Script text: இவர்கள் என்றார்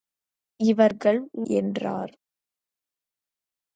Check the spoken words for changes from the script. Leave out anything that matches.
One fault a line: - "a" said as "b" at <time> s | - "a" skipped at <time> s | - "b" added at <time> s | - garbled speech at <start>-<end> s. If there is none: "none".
none